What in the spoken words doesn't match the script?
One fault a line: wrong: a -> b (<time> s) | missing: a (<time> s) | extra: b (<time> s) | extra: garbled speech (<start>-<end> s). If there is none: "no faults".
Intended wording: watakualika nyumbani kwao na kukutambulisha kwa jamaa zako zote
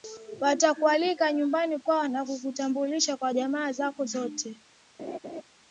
no faults